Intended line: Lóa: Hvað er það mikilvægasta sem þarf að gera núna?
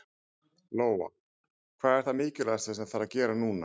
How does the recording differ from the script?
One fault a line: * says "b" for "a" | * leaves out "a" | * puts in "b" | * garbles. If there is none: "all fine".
all fine